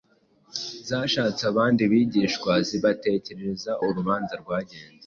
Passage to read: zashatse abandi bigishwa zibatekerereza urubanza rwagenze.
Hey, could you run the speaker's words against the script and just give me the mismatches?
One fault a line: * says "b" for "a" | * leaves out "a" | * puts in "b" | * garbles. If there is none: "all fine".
all fine